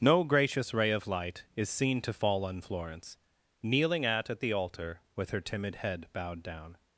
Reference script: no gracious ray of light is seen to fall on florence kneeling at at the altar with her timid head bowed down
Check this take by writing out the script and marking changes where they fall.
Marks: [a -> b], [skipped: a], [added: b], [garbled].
no gracious ray of light is seen to fall on florence kneeling at at the altar with her timid head bowed down